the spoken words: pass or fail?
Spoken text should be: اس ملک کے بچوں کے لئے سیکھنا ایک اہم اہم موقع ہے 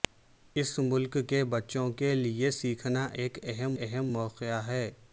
pass